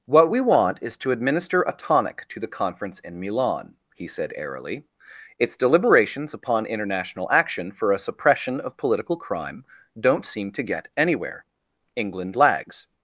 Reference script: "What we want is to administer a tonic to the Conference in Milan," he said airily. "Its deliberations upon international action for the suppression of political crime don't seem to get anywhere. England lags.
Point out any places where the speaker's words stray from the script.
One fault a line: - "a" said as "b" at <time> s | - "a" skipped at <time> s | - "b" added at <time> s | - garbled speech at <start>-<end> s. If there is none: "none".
- "the" said as "a" at 7.9 s